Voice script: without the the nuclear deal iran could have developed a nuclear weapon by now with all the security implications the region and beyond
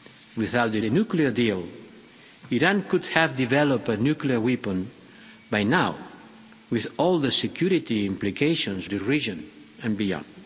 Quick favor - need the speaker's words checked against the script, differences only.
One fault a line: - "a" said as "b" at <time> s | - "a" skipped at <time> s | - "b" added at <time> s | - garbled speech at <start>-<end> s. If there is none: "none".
none